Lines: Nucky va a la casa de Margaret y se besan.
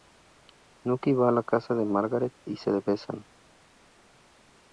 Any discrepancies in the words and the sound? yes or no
no